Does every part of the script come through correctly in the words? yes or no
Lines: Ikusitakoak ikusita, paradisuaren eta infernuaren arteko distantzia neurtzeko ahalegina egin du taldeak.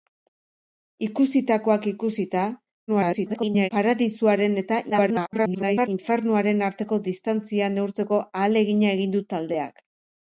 no